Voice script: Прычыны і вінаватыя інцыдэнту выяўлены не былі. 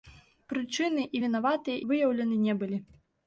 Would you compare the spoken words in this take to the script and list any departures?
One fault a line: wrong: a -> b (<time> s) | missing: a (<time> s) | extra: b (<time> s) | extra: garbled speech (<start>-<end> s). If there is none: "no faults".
missing: інцыдэнту (1.8 s)